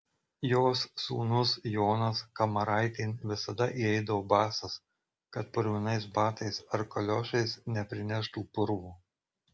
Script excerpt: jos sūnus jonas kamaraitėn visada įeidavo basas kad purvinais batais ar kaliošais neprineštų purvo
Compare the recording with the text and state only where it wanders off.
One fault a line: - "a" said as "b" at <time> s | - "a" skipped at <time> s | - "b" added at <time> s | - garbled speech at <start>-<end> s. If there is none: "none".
none